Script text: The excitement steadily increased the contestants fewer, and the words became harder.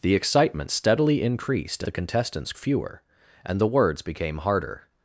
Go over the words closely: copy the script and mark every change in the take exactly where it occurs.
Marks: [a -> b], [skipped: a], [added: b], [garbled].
The excitement steadily increased the contestants fewer, and the words became harder.